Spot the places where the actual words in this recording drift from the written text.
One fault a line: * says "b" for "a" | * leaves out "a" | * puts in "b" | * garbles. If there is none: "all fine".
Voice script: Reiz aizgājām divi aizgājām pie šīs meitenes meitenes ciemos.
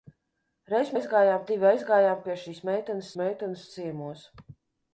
all fine